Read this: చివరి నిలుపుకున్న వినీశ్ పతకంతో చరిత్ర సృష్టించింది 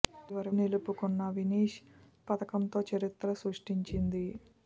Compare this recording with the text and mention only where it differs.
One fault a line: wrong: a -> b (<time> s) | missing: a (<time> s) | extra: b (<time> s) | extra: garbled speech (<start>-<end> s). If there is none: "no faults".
no faults